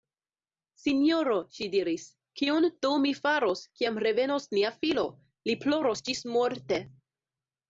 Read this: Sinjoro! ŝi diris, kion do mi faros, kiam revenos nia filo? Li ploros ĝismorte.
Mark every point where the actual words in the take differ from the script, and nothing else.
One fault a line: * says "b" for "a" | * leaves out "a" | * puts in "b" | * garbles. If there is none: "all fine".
all fine